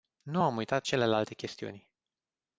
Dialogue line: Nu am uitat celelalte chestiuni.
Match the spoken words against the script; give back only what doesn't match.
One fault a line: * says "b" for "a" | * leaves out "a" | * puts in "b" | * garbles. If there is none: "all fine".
all fine